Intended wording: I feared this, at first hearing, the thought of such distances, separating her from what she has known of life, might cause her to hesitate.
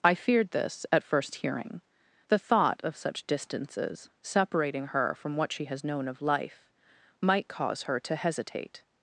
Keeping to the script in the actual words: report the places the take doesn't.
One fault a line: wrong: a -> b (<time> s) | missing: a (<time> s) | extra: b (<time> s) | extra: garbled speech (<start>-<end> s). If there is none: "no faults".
no faults